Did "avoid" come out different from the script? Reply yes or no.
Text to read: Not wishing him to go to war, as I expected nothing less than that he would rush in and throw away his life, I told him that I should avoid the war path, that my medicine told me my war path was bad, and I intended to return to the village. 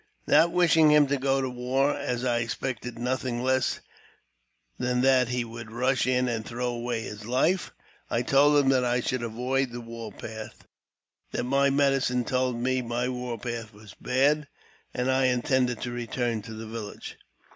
no